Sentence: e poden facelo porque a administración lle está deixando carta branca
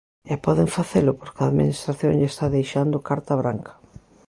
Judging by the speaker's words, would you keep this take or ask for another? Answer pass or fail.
pass